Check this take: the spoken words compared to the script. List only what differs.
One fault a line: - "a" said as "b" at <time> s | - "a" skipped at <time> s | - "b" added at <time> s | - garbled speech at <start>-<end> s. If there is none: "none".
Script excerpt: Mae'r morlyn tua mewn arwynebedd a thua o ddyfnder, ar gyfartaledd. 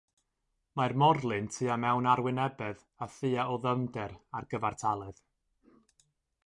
none